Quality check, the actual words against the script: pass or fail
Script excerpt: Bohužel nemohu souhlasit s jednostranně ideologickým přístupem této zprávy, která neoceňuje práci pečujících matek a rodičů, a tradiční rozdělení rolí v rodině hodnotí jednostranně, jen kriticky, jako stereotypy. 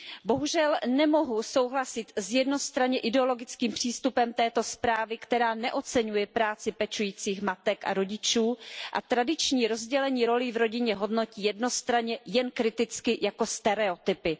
pass